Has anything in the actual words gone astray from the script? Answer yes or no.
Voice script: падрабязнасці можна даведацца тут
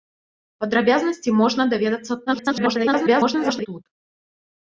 yes